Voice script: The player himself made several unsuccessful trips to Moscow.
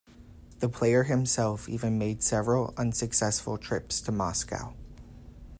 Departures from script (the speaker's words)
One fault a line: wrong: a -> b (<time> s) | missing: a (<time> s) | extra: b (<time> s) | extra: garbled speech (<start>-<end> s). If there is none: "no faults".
extra: even (1.7 s)